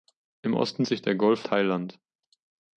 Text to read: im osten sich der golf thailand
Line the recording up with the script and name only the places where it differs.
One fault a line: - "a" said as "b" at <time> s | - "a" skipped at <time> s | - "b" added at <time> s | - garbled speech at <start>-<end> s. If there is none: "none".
none